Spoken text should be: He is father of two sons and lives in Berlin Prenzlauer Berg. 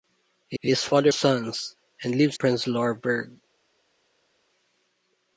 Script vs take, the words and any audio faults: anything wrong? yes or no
yes